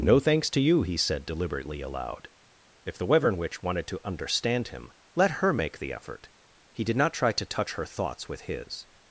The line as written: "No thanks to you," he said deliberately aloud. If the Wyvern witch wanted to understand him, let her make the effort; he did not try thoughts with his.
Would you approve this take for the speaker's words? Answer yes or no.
no